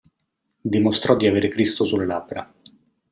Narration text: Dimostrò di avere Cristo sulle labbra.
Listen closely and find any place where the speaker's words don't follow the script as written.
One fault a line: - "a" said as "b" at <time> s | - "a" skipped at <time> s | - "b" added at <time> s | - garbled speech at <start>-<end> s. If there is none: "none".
none